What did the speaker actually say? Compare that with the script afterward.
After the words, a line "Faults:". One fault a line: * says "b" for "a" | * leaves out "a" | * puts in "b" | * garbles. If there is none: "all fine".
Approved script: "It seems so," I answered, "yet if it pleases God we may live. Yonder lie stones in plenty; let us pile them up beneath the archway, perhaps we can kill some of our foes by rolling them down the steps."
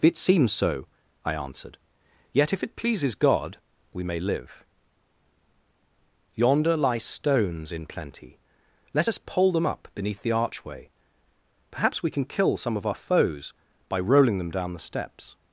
"It seems so," I answered, "yet if it pleases God we may live. Yonder lie stones in plenty; let us pole them up beneath the archway, perhaps we can kill some of our foes by rolling them down the steps."
Faults:
* says "pole" for "pile"